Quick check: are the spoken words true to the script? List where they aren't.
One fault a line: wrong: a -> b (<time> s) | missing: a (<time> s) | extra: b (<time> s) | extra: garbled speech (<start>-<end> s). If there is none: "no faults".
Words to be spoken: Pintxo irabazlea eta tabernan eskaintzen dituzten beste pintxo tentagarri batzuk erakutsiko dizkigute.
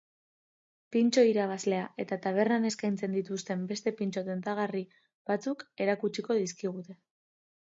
no faults